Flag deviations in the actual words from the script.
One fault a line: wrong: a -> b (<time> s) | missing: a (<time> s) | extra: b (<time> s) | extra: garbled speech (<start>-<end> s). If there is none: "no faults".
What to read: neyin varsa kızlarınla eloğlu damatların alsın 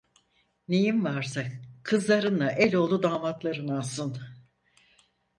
no faults